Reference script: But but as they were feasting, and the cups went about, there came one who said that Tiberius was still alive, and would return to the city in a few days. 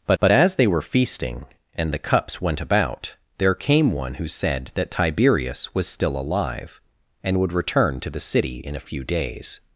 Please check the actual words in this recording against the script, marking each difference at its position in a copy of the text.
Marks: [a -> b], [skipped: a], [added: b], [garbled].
But but as they were feasting, and the cups went about, there came one who said that Tiberius was still alive, and would return to the city in a few days.